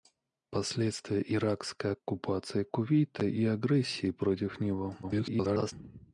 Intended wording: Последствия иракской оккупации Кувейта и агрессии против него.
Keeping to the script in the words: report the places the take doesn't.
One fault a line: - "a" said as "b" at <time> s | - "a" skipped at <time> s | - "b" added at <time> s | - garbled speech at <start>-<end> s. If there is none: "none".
- garbled speech at 5.0-5.7 s